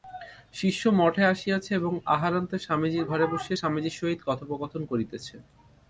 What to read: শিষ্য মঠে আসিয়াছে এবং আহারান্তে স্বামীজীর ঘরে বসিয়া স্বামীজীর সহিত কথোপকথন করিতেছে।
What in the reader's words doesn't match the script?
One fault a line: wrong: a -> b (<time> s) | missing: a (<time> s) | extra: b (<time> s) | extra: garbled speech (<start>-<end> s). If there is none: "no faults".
no faults